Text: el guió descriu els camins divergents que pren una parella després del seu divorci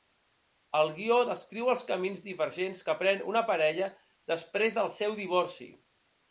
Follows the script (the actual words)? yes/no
yes